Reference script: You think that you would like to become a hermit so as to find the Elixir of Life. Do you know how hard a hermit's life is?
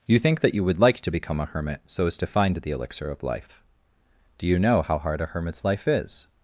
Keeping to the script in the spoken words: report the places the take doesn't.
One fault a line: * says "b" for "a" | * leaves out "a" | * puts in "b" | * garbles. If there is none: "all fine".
all fine